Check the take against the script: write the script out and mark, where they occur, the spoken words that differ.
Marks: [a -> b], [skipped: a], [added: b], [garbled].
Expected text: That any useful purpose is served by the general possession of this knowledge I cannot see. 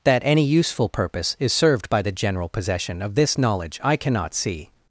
That any useful purpose is served by the general possession of this knowledge I cannot see.